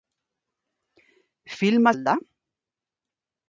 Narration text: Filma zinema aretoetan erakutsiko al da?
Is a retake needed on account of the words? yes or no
yes